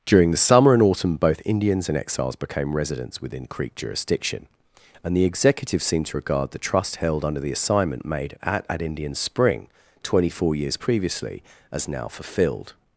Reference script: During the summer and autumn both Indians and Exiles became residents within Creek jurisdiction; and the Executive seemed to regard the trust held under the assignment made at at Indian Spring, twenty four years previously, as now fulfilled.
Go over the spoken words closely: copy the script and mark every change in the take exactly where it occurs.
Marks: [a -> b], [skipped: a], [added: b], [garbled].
During the summer and autumn both Indians and Exiles became residents within Creek jurisdiction; and the Executive seemed to regard the trust held under the assignment made at at Indian Spring, twenty four years previously, as now fulfilled.